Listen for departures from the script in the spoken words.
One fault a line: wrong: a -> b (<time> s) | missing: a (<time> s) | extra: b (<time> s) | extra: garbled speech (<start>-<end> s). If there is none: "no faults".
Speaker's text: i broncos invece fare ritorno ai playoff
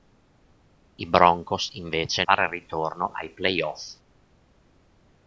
no faults